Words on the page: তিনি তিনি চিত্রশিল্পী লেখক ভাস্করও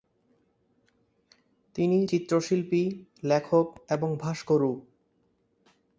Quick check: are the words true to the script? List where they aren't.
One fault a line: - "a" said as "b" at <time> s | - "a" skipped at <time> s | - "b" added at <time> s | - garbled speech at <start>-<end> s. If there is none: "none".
- "তিনি" skipped at 2.1 s
- "এবং" added at 3.9 s